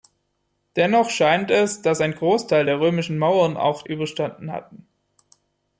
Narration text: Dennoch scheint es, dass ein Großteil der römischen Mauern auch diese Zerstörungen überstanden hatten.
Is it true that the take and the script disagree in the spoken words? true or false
true